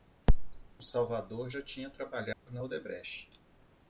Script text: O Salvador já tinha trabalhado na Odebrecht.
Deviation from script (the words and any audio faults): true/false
true